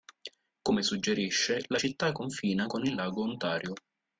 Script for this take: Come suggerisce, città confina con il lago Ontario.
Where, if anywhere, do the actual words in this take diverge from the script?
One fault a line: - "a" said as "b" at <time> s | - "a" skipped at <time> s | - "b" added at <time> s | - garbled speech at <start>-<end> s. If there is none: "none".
- "la" added at 1.7 s